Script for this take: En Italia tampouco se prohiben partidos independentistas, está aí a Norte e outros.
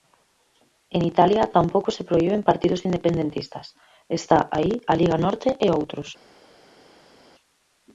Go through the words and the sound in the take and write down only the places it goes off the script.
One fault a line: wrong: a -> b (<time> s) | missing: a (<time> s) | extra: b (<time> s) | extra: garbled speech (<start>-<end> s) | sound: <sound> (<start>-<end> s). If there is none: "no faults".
extra: Liga (5.0 s)